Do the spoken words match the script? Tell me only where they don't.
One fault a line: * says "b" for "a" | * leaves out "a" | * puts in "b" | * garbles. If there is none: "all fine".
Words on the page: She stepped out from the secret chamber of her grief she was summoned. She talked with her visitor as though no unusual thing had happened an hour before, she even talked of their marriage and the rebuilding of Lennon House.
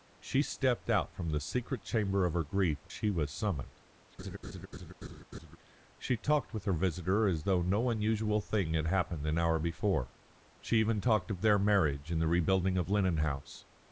all fine